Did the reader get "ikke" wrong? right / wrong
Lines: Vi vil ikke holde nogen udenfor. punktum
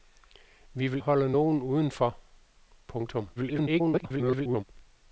wrong